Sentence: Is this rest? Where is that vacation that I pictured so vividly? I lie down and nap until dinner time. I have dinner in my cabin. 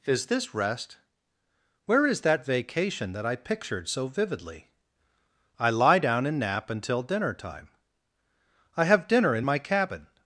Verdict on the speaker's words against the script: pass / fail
pass